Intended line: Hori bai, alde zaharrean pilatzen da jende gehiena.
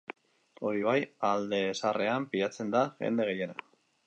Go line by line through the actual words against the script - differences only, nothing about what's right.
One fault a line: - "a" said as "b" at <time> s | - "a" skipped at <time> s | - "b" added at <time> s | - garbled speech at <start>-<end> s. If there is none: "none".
none